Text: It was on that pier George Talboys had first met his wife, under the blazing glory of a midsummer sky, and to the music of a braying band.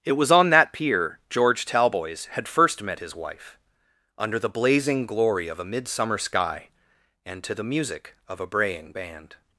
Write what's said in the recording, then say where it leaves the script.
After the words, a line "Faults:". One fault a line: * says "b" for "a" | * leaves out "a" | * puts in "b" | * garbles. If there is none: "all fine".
It was on that pier George Talboys had first met his wife, under the blazing glory of a midsummer sky, and to the music of a braying band.
Faults:
all fine